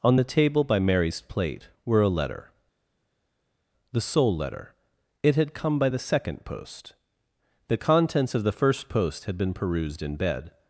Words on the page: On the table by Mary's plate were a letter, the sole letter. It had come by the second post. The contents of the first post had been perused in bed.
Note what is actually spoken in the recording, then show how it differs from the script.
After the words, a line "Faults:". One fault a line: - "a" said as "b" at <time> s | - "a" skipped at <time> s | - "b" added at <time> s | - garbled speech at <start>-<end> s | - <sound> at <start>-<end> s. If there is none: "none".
On the table by Mary's plate were a letter, the sole letter. It had come by the second post. The contents of the first post had been perused in bed.
Faults:
none